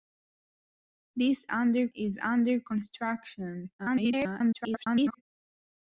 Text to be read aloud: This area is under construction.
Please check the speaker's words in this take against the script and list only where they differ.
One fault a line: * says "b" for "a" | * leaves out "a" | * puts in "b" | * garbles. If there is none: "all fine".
* says "under" for "area"
* garbles